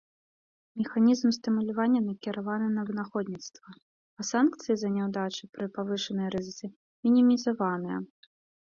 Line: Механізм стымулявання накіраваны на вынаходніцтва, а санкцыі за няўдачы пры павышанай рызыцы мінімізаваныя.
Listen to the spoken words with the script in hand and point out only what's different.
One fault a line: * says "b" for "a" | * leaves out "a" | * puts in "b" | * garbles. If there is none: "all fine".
all fine